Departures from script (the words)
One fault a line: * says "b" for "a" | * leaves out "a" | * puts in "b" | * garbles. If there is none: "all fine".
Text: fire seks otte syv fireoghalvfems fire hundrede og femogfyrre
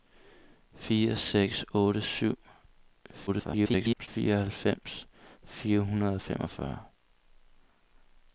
* garbles